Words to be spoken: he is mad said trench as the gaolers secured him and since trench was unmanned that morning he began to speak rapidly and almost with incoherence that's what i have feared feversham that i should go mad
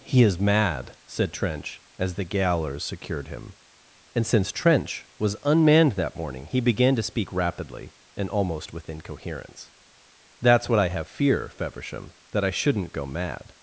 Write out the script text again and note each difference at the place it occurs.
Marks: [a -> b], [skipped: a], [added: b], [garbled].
he is mad said trench as the gaolers secured him and since trench was unmanned that morning he began to speak rapidly and almost with incoherence that's what i have [feared -> fear] feversham that i [should -> shouldn't] go mad